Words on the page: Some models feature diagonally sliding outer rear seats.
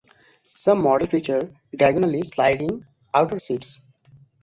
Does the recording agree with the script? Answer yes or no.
no